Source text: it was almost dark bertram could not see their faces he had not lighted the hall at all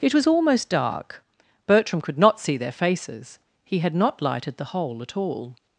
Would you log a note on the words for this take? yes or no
yes